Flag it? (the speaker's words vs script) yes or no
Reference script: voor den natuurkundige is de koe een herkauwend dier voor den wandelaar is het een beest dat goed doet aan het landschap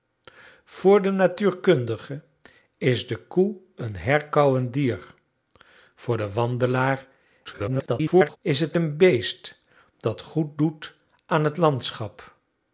yes